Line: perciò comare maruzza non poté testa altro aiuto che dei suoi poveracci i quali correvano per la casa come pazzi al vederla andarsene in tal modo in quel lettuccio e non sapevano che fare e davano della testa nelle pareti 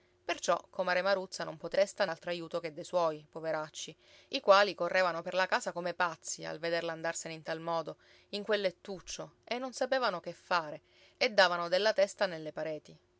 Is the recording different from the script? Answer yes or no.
no